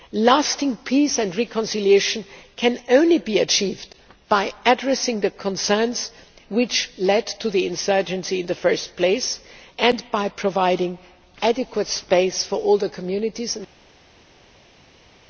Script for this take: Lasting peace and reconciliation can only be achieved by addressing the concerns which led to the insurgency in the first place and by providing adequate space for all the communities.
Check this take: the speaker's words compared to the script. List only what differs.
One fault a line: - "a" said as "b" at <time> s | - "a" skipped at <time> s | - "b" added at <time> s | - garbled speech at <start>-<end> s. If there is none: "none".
none